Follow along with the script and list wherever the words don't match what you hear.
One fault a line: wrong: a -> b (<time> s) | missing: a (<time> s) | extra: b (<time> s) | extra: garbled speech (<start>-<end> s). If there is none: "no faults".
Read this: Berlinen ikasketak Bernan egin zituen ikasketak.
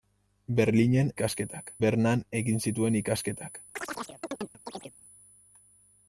no faults